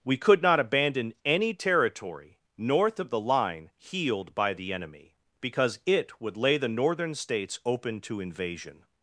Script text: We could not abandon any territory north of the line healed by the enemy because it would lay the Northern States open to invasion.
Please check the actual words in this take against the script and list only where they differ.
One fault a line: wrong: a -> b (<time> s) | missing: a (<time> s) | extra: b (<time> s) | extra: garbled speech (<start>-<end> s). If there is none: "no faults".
no faults